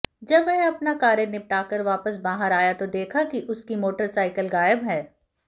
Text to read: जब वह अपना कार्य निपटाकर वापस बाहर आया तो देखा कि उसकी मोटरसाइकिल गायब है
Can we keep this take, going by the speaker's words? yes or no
yes